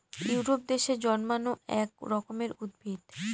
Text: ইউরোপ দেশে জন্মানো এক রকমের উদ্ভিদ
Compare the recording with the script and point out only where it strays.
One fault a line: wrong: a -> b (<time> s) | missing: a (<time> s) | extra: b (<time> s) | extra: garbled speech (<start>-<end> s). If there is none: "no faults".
no faults